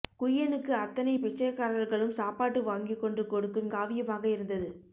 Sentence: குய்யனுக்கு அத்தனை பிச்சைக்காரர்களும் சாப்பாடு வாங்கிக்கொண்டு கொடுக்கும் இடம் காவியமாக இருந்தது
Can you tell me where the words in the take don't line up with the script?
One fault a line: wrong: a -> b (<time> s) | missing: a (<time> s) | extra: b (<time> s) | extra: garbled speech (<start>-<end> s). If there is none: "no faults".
missing: இடம் (3.7 s)